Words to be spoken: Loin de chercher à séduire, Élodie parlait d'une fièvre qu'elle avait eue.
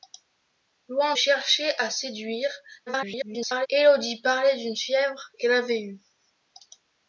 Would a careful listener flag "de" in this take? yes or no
yes